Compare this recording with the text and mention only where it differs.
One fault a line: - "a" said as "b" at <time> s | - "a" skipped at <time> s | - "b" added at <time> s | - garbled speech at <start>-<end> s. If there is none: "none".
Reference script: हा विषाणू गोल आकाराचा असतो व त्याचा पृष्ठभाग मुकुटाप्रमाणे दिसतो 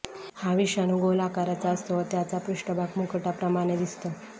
none